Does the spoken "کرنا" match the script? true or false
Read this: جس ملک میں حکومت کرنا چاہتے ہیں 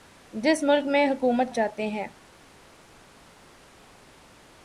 false